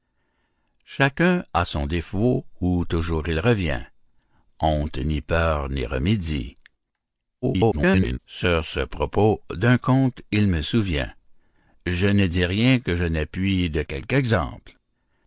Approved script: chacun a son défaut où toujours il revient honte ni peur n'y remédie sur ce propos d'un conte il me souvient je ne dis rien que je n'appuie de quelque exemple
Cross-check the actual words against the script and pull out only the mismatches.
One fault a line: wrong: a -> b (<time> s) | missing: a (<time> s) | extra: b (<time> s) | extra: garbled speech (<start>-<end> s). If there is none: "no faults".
extra: garbled speech (7.4-8.2 s)